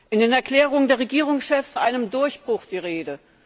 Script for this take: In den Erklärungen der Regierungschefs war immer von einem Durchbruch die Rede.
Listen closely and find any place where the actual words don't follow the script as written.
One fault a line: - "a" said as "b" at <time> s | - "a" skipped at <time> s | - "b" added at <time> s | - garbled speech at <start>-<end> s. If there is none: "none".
- "war immer von" skipped at 1.8 s